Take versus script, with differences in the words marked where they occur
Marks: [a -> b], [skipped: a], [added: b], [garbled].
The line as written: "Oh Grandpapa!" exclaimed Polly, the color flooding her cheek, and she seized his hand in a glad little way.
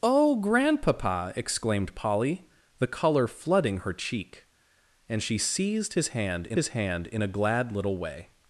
"Oh Grandpapa!" exclaimed Polly, the color flooding her cheek, and she seized his hand in [added: his hand in] a glad little way.